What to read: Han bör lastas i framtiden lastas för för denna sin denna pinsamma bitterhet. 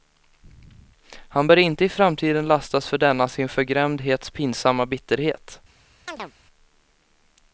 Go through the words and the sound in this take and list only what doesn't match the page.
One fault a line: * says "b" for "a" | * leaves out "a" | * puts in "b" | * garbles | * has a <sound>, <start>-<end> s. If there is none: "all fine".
* says "inte" for "lastas"
* leaves out "för"
* says "förgrämdhets" for "denna"
* has a chirp, 6.1-6.3 s